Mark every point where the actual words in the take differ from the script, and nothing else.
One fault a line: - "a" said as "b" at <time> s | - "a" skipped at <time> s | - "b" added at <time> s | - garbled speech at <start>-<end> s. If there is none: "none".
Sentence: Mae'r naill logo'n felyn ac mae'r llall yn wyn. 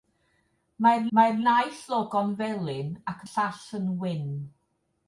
- "mae'r" added at 1.2 s
- "mae'r" skipped at 3.2 s